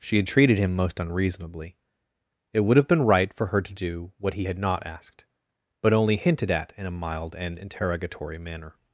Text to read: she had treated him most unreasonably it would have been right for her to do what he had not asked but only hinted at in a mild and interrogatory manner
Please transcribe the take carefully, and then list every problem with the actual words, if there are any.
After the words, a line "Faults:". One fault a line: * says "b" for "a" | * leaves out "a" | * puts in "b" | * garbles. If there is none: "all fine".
she had treated him most unreasonably it would have been right for her to do what he had not asked but only hinted at in a mild and interrogatory manner
Faults:
all fine